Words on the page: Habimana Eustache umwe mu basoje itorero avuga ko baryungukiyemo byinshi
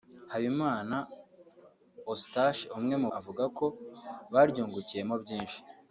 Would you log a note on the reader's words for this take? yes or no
yes